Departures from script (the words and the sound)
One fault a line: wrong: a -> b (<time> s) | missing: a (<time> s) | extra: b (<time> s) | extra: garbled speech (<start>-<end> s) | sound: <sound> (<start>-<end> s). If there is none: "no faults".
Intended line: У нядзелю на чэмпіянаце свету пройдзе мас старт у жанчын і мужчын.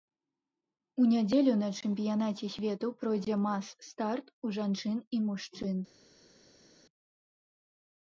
no faults